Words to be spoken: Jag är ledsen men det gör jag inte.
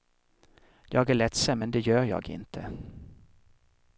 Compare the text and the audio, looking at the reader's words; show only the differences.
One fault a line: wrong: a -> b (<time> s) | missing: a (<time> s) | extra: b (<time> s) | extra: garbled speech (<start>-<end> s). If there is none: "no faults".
no faults